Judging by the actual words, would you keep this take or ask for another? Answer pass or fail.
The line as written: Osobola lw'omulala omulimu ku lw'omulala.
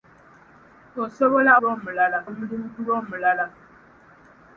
pass